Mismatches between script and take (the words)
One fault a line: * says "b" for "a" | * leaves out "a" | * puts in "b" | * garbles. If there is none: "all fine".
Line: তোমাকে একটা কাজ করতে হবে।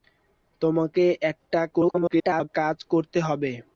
* garbles